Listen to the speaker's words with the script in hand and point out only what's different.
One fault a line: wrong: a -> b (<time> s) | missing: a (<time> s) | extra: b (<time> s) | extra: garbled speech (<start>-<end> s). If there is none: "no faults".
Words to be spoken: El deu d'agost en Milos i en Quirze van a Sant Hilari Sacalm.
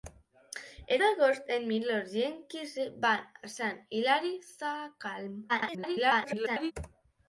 missing: deu (1.0 s)
extra: garbled speech (5.5-6.7 s)